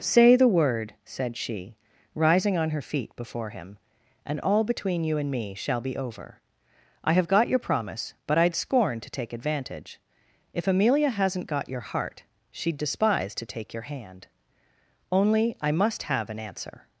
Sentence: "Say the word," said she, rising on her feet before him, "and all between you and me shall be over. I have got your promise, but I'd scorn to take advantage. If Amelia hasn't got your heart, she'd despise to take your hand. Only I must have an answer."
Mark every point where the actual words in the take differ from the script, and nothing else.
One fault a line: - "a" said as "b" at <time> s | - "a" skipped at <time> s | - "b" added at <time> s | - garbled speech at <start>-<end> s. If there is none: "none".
none